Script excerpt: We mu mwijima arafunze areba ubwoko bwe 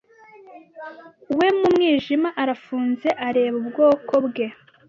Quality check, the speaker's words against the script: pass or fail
pass